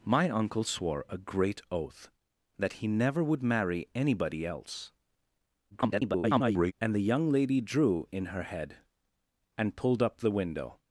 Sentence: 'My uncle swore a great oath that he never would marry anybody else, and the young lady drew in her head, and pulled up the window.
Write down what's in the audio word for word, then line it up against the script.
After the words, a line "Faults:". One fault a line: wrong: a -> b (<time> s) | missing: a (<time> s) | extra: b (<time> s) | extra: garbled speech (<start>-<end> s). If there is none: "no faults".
'My uncle swore a great oath that he never would marry anybody else, [garbled] and the young lady drew in her head, and pulled up the window.
Faults:
extra: garbled speech (5.7-6.7 s)